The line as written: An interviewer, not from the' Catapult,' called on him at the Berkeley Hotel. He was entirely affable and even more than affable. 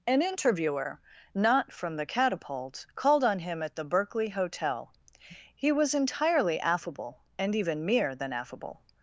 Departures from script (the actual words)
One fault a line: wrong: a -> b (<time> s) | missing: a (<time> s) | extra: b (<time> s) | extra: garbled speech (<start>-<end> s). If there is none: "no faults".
wrong: more -> mere (7.8 s)